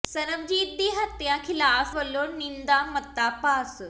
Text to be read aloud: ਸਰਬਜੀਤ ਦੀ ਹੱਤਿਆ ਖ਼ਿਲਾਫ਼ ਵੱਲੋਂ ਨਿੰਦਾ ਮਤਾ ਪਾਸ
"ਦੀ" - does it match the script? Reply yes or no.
yes